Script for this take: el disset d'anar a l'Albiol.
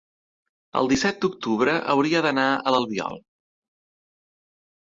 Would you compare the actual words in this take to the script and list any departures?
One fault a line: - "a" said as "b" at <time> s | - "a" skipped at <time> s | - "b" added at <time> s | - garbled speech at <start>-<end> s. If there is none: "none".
- "d'octubre hauria" added at 1.2 s